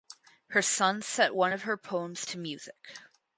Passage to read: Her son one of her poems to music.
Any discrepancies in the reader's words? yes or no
yes